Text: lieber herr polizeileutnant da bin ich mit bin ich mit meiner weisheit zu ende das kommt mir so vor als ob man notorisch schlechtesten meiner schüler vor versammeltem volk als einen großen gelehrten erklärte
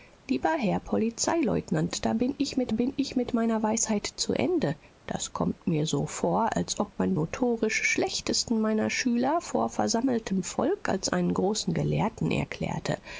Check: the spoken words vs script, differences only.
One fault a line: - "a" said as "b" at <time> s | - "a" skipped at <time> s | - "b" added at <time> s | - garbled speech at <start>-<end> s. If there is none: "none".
none